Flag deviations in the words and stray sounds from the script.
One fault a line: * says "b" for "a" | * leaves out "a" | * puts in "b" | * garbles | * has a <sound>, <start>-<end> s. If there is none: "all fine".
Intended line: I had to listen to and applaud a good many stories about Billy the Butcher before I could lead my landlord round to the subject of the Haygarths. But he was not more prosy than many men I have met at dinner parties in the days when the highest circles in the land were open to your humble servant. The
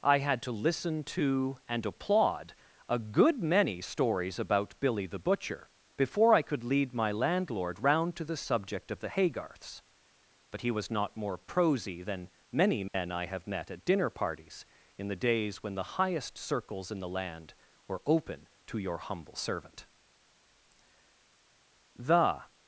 * has a dropout, 12.9-12.9 s